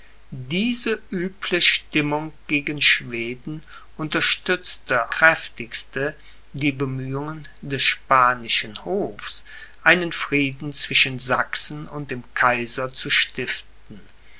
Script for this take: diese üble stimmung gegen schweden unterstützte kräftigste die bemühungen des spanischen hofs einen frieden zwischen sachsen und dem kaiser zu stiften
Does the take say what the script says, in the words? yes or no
yes